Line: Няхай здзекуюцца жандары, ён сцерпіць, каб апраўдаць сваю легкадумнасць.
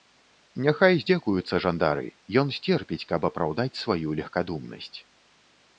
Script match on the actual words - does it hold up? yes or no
yes